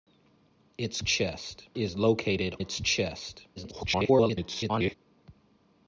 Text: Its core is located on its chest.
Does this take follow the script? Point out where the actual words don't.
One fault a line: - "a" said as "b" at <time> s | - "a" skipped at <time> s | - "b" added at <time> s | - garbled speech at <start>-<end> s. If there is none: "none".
- "core" said as "chest" at 1.0 s
- "on" skipped at 2.5 s
- garbled speech at 3.6-4.9 s